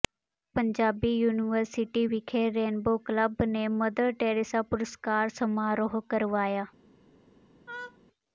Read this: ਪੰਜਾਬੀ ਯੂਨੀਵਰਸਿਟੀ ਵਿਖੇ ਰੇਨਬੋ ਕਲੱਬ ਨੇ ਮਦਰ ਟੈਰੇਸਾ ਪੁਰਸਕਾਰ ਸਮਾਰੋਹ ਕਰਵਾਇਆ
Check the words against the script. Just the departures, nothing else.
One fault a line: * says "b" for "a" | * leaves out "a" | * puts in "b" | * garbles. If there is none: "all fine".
all fine